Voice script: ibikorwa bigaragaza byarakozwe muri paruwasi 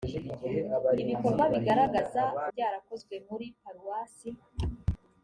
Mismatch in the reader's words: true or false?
false